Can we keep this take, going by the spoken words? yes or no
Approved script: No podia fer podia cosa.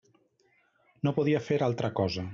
no